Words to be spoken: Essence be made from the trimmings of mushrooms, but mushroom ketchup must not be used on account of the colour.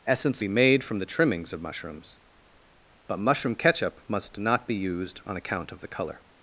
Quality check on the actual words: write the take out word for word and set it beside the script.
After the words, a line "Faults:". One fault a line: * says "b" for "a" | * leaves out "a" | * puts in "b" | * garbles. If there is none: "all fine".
Essence be made from the trimmings of mushrooms, but mushroom ketchup must not be used on account of the colour.
Faults:
all fine